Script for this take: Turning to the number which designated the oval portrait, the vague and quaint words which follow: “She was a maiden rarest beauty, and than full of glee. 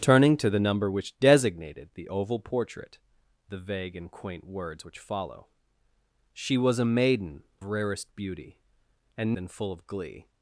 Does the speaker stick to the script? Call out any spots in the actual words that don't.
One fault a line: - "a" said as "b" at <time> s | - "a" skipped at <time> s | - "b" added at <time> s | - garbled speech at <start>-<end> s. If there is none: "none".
none